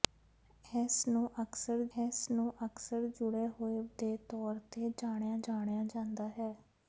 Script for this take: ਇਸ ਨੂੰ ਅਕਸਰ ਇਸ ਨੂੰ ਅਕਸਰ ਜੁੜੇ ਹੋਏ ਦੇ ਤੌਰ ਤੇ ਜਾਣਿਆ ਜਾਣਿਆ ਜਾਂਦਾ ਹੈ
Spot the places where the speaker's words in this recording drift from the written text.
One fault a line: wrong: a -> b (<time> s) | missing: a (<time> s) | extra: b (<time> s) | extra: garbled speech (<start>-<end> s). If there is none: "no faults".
no faults